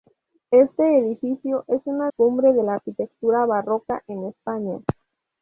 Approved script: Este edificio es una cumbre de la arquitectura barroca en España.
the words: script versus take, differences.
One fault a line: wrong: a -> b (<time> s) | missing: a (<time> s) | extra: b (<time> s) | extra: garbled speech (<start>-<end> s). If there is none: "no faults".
no faults